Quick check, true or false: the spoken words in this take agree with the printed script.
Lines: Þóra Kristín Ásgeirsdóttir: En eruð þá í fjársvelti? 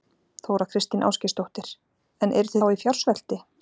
true